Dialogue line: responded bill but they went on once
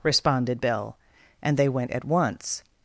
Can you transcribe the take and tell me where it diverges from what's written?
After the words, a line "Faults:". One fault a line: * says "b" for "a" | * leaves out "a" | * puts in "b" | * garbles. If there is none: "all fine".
responded bill and they went at once
Faults:
* says "and" for "but"
* says "at" for "on"